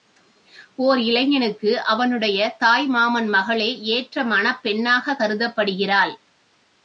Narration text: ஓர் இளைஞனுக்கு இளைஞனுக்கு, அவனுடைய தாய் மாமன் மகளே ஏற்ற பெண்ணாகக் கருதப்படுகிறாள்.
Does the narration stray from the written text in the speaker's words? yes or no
yes